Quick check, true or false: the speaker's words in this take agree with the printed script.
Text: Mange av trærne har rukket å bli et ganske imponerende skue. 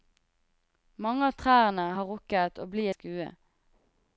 false